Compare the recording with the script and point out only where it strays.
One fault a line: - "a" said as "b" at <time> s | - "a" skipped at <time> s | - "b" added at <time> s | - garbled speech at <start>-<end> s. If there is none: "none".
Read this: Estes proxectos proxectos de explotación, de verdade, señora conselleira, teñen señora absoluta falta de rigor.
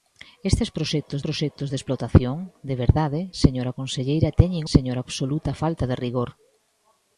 none